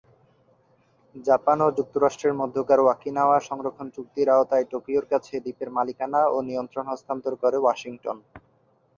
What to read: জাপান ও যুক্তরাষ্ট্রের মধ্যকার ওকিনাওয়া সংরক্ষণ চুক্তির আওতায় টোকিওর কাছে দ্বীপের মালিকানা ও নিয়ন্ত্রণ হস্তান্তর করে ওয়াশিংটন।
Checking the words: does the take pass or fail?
pass